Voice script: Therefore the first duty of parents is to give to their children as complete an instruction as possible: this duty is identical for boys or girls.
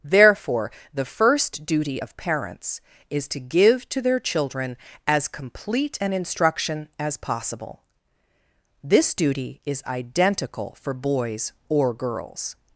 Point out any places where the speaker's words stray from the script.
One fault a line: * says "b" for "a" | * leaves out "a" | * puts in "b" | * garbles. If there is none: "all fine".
all fine